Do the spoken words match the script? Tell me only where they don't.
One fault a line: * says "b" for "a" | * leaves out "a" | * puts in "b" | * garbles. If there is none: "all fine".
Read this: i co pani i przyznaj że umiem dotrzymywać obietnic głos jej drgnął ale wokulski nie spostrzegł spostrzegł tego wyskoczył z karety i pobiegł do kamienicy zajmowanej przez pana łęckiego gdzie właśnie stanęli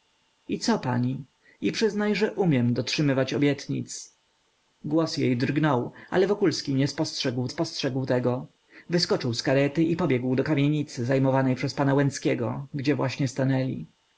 all fine